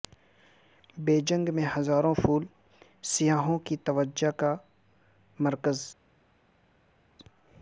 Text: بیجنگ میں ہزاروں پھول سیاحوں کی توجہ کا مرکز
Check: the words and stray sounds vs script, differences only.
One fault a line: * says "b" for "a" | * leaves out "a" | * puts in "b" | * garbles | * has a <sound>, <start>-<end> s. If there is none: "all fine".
all fine